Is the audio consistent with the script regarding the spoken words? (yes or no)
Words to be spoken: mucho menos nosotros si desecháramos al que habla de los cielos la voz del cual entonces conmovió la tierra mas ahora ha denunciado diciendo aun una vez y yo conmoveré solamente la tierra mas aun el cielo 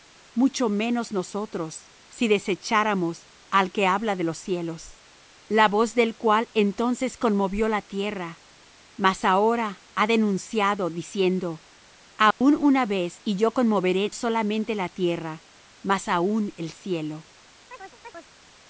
yes